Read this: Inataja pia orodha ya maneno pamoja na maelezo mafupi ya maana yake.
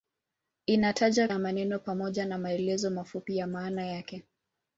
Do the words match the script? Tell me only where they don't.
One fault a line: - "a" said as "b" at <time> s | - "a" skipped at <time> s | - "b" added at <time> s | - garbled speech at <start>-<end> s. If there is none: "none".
- "pia orodha" skipped at 1.3 s